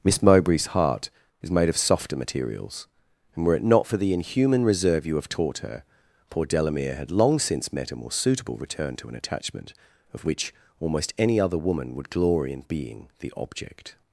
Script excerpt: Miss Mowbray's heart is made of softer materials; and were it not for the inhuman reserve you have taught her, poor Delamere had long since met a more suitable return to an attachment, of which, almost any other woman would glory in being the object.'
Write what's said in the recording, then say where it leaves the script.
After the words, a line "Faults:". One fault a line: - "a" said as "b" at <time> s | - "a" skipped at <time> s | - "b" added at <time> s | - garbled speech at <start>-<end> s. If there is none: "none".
Miss Mowbray's heart is made of softer materials; and were it not for the inhuman reserve you have taught her, poor Delamere had long since met a more suitable return to an attachment, of which, almost any other woman would glory in being the object.'
Faults:
none